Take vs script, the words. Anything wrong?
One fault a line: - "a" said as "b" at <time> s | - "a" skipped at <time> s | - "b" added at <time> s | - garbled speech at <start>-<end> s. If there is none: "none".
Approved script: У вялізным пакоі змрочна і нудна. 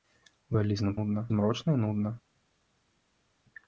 - "пакоі" said as "нудна" at 0.9 s